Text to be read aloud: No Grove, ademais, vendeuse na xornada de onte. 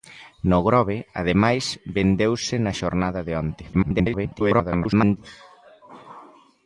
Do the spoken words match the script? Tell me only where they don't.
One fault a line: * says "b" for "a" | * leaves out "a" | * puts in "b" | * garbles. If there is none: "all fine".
* garbles